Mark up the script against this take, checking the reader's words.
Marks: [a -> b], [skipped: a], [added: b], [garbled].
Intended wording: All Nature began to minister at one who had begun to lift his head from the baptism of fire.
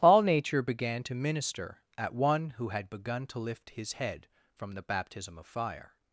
All Nature began to minister at one who had begun to lift his head from the baptism of fire.